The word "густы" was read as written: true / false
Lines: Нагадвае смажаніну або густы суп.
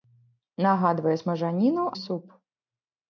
false